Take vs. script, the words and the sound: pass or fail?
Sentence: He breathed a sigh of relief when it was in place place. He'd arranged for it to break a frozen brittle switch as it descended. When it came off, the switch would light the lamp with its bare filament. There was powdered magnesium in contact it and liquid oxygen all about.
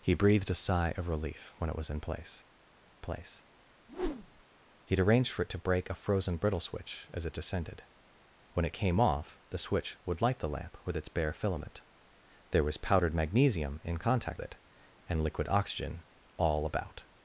fail